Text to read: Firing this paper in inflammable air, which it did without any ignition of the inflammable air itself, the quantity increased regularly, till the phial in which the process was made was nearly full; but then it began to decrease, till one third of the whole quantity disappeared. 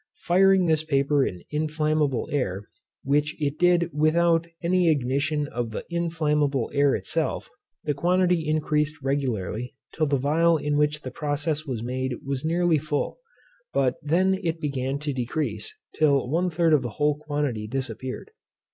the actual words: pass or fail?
pass